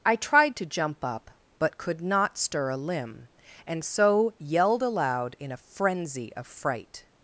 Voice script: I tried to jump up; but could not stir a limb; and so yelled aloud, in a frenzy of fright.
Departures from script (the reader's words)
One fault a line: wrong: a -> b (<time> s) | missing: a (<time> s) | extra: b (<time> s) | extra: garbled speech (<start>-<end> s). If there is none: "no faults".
no faults